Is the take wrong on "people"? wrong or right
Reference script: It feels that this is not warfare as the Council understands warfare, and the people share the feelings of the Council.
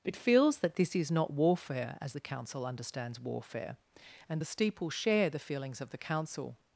wrong